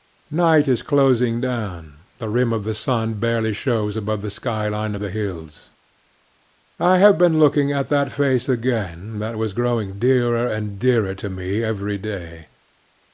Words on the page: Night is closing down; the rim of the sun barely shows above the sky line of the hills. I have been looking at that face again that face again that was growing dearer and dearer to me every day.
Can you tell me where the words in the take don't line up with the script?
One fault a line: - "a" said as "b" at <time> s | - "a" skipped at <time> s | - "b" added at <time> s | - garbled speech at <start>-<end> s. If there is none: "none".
- "face again that" skipped at 9.4 s